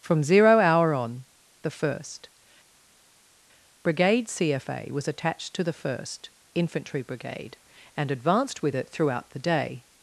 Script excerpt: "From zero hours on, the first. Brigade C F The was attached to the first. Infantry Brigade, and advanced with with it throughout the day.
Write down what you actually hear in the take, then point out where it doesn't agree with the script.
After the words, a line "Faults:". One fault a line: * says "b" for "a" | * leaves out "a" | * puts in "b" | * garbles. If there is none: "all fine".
"From zero hour on, the first. Brigade C F A was attached to the first. Infantry Brigade, and advanced with it throughout the day.
Faults:
* says "hour" for "hours"
* says "A" for "The"
* leaves out "with"